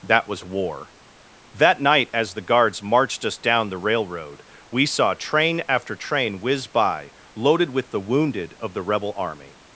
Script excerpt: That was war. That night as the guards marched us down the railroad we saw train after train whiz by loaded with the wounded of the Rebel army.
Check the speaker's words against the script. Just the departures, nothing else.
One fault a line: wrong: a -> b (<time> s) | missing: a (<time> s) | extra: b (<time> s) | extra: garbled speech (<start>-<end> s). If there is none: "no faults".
no faults